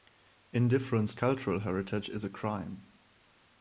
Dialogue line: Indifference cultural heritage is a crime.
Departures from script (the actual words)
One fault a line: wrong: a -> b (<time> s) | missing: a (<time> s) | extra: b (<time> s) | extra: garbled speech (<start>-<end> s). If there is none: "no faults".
no faults